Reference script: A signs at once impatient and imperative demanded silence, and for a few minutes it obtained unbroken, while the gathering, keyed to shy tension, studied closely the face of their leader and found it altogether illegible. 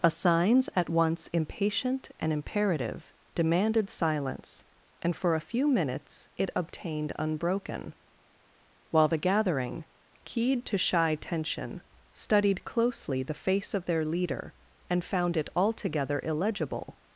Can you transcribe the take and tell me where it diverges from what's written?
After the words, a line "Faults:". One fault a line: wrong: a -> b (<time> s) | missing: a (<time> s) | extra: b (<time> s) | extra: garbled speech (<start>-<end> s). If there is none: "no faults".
A signs at once impatient and imperative demanded silence, and for a few minutes it obtained unbroken, while the gathering, keyed to shy tension, studied closely the face of their leader and found it altogether illegible.
Faults:
no faults